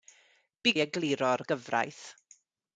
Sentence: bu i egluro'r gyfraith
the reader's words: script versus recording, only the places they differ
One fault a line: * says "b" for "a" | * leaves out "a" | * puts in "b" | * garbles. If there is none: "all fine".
all fine